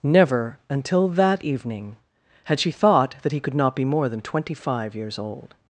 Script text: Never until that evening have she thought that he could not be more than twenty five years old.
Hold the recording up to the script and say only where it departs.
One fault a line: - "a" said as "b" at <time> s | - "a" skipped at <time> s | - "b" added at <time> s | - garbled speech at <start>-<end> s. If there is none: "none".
- "have" said as "had" at 2.4 s